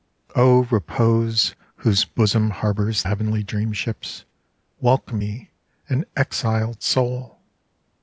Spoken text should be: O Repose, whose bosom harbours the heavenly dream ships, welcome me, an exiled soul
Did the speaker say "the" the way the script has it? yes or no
no